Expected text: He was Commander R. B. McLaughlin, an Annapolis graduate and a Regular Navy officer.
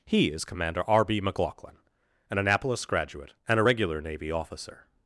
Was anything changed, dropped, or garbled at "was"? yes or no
yes